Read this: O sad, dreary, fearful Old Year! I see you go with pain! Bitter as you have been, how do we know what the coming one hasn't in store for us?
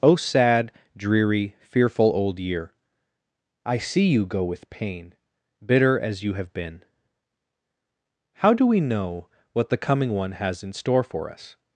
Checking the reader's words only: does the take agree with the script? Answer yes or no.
no